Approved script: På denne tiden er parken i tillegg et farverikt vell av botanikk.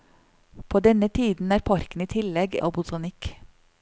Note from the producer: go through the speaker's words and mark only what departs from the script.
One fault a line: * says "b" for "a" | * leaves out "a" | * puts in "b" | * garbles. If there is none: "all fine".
* leaves out "et farverikt vell"